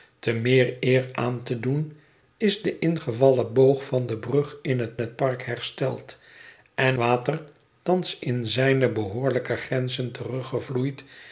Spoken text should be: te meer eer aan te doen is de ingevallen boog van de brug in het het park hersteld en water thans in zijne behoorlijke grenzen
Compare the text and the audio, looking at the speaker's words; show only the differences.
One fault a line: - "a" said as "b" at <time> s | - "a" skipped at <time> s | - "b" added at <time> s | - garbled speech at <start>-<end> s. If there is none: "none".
none